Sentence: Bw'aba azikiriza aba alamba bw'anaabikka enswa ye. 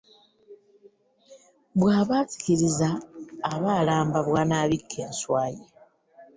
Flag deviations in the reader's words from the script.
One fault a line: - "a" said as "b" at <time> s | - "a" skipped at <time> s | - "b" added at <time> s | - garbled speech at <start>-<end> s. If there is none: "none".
none